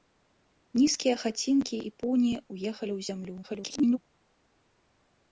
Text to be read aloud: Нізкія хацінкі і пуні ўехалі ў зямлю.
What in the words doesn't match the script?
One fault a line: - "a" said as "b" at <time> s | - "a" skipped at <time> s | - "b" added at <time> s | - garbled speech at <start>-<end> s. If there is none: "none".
- garbled speech at 3.4-4.0 s